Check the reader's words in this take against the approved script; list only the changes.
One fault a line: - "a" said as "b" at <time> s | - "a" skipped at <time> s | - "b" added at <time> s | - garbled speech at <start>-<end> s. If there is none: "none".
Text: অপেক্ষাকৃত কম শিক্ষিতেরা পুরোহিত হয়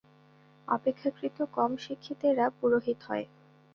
none